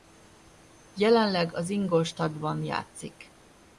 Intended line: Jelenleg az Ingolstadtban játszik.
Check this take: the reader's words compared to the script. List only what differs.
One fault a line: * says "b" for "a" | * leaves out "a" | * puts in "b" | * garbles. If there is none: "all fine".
all fine